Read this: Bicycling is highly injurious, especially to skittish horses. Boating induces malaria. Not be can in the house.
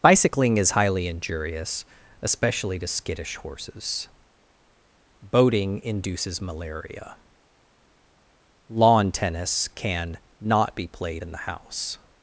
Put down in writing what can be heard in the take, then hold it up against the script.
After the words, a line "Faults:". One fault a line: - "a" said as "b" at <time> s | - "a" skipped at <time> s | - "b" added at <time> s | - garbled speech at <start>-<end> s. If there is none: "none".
Bicycling is highly injurious, especially to skittish horses. Boating induces malaria. Lawn tennis can not be played in the house.
Faults:
- "Lawn tennis can" added at 8.7 s
- "can" said as "played" at 10.9 s